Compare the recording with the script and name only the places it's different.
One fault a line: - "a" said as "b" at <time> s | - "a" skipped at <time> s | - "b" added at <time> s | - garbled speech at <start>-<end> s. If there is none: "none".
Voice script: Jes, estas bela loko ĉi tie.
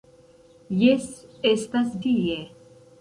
- "bela loko ĉi" skipped at 1.9 s